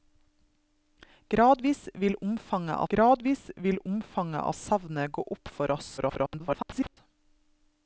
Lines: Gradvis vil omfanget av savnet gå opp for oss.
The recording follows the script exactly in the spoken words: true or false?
false